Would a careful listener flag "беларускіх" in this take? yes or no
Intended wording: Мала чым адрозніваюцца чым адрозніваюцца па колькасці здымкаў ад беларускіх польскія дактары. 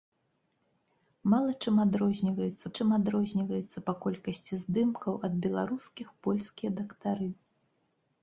no